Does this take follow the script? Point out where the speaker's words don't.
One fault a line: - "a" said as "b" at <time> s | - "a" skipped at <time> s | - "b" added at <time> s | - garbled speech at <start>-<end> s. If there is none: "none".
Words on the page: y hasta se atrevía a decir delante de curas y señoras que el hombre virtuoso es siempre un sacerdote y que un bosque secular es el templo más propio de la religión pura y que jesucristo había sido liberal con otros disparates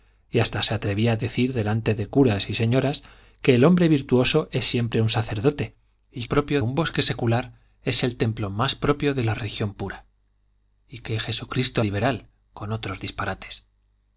- "que" said as "propio" at 6.2 s
- "había sido" skipped at 11.8 s